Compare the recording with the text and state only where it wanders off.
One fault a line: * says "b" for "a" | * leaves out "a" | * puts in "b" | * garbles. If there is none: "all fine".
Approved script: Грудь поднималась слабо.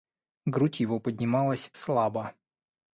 * puts in "его"